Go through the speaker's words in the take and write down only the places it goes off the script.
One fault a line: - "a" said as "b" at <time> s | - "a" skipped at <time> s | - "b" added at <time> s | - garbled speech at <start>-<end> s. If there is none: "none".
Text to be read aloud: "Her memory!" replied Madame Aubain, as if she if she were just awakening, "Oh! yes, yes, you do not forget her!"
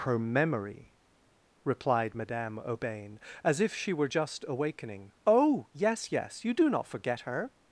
- "if she" skipped at 3.9 s